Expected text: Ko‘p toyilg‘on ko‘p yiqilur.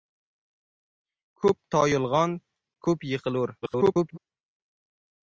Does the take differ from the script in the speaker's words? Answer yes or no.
yes